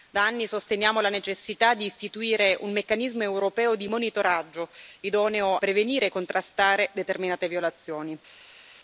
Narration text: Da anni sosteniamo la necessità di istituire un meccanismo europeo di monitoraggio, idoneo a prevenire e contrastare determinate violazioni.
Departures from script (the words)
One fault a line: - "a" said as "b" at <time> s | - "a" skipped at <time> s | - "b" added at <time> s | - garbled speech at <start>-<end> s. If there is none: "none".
- "a" skipped at 5.6 s